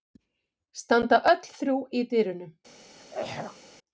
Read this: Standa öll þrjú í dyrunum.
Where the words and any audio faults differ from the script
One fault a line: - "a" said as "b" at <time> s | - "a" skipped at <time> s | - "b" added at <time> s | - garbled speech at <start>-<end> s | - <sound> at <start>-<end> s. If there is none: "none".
- throat clearing at 3.0-3.6 s